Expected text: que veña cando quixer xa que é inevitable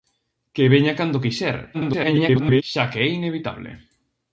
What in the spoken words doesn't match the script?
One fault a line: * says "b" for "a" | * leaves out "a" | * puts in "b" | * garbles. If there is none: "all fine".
* garbles